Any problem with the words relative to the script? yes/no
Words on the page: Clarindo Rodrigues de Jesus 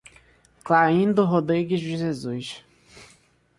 no